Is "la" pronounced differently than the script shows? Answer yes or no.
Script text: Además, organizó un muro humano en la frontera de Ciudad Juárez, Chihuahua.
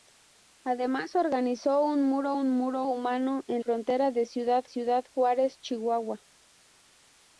yes